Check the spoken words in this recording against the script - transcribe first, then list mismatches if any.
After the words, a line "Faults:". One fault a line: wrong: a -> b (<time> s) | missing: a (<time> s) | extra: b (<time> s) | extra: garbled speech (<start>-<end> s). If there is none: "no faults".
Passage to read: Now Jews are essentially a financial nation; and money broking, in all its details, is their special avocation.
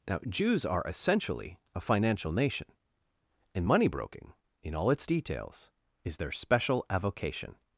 Now Jews are essentially a financial nation; and money broking, in all its details, is their special avocation.
Faults:
no faults